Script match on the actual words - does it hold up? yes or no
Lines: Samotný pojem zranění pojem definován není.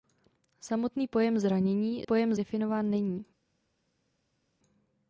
yes